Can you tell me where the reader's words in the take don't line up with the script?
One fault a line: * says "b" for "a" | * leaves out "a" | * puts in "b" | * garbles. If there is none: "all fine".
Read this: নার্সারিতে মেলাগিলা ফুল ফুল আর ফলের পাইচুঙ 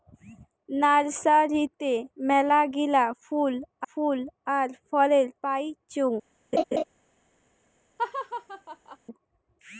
all fine